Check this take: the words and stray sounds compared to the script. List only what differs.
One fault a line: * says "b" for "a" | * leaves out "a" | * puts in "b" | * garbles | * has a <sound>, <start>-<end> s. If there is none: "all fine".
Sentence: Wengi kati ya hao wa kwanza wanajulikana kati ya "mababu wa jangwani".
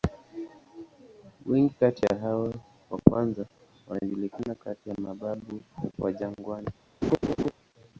* has a laugh, 7.0-7.5 s